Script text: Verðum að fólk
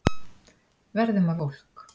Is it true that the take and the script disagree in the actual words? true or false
false